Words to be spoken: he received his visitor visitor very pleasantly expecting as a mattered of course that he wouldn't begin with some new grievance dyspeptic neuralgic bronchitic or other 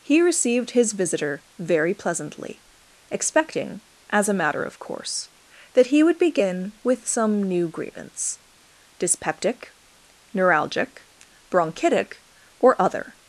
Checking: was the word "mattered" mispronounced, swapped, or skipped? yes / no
yes